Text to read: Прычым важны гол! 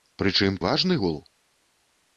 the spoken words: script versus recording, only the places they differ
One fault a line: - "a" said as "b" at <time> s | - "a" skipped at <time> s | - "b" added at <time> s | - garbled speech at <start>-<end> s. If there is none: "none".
none